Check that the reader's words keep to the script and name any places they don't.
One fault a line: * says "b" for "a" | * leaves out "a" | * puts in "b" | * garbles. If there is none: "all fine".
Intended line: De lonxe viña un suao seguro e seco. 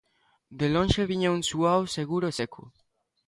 all fine